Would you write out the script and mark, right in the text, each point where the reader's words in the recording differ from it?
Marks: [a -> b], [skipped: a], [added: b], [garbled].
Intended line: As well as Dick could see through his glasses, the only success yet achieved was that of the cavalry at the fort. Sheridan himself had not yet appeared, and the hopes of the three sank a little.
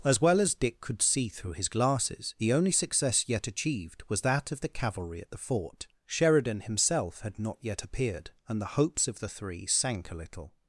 As well as Dick could see through his glasses, the only success yet achieved was that of the cavalry at the fort. Sheridan himself had not yet appeared, and the hopes of the three sank a little.